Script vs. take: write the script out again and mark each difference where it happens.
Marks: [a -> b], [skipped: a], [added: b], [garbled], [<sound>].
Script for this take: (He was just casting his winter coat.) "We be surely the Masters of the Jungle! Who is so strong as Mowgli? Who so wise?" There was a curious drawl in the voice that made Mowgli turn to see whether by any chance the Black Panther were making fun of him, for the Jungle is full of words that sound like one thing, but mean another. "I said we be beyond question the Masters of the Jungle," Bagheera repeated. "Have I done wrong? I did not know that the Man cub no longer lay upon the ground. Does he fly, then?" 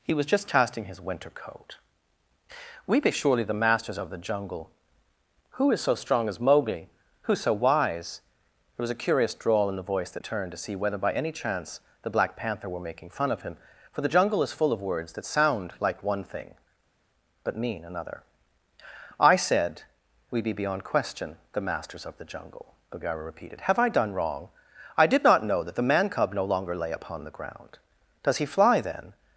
(He was just casting his winter coat.) "We be surely the Masters of the Jungle! Who is so strong as Mowgli? Who so wise?" There was a curious drawl in the voice that [skipped: made Mowgli] turn to see whether by any chance the Black Panther were making fun of him, for the Jungle is full of words that sound like one thing, but mean another. "I said we be beyond question the Masters of the Jungle," Bagheera repeated. "Have I done wrong? I did not know that the Man cub no longer lay upon the ground. Does he fly, then?"